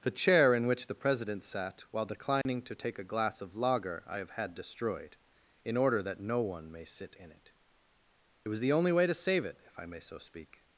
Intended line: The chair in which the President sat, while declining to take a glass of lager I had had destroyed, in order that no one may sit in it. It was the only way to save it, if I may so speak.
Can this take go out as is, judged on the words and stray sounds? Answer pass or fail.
fail